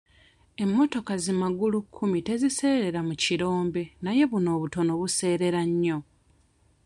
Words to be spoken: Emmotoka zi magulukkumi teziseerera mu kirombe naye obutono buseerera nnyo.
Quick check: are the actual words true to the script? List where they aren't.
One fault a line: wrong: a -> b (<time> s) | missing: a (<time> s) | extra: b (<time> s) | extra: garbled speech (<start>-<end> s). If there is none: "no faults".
extra: buno (4.3 s)